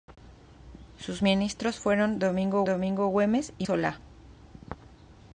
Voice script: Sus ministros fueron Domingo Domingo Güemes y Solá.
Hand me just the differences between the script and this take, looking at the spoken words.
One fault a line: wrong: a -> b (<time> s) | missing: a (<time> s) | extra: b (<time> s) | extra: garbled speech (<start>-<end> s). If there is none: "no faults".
no faults